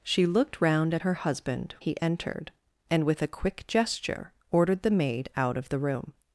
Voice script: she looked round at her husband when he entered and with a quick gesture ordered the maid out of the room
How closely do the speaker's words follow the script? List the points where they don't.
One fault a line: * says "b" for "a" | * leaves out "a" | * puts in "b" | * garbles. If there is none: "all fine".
* leaves out "when"